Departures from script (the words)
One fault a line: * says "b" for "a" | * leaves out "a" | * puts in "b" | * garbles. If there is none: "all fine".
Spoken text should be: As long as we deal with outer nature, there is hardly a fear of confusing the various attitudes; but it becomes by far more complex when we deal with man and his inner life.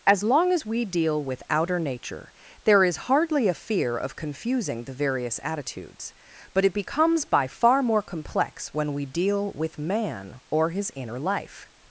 * says "or" for "and"